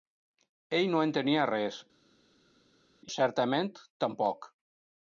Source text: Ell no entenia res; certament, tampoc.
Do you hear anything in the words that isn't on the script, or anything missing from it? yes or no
no